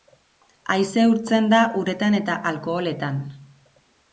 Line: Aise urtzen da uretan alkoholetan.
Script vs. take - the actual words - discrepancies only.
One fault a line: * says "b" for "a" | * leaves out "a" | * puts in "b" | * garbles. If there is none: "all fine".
* puts in "eta"